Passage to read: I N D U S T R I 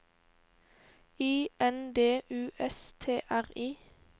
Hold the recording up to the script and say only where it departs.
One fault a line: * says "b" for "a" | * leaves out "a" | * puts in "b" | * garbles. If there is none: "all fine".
all fine